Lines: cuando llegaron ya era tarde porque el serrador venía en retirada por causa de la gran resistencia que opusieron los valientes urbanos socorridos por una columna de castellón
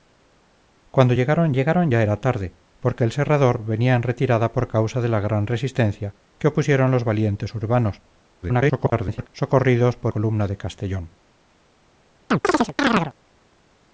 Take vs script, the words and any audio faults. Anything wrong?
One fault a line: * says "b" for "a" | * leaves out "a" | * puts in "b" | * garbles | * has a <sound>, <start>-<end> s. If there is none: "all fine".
* puts in "llegaron"
* garbles
* leaves out "una"
* has a chirp, 12.3-13.1 s